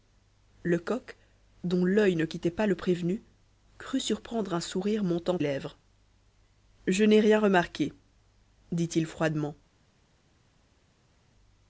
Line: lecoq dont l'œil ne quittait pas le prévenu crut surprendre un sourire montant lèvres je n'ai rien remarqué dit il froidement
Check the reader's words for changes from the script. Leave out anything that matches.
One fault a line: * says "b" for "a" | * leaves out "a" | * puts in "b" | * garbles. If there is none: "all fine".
all fine